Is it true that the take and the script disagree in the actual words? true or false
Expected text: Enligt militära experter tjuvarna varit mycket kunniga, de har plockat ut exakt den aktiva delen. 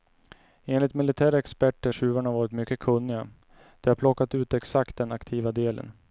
false